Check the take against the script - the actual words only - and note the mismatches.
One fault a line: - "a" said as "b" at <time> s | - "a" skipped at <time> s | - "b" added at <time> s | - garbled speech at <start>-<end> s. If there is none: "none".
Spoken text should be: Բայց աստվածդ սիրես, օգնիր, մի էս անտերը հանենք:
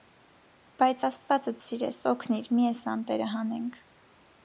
none